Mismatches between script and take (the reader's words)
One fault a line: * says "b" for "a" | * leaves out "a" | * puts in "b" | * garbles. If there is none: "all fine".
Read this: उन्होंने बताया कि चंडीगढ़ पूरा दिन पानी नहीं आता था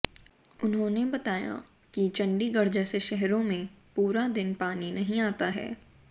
* puts in "जैसे शहरों में"
* says "है" for "था"